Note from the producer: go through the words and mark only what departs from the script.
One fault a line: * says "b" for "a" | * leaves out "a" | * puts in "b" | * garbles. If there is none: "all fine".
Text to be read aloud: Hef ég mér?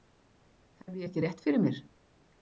* puts in "ekki rétt fyrir"